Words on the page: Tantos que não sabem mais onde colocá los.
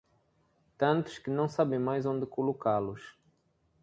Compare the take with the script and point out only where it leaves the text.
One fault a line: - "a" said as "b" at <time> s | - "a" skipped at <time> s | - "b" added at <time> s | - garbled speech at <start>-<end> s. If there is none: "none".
none